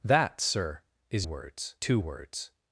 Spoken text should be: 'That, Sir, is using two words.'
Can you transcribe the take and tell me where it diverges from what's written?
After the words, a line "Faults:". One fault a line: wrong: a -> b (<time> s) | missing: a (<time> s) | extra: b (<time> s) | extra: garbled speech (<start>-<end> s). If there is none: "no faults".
'That, Sir, is words two words.'
Faults:
wrong: using -> words (1.2 s)